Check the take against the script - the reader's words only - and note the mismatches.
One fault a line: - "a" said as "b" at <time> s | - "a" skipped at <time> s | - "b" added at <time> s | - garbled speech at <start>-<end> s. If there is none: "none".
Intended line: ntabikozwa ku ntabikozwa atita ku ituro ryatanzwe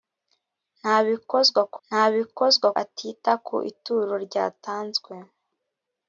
none